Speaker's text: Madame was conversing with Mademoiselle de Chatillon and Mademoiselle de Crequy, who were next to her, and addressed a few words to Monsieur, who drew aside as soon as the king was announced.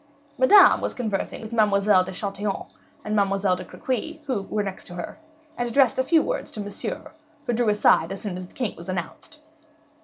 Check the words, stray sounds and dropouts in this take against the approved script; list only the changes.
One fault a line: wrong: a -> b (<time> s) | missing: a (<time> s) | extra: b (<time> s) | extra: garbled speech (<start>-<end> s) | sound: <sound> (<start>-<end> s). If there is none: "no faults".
no faults